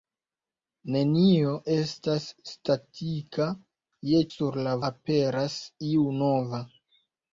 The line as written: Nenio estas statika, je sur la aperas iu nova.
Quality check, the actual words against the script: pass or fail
pass